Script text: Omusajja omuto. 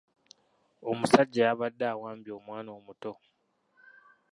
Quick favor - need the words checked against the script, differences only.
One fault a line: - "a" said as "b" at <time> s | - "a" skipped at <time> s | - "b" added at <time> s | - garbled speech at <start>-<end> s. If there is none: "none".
- "yabadde awambye omwana" added at 1.5 s